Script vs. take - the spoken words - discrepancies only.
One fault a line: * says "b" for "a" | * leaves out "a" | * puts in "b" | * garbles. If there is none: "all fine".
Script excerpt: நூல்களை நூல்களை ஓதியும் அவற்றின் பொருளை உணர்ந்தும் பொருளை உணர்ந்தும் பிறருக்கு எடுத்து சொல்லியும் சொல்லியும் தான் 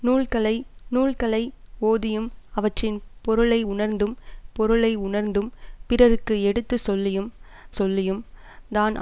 all fine